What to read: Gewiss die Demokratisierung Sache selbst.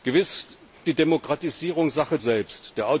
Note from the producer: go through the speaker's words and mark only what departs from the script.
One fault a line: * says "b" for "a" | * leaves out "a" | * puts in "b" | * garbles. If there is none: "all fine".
all fine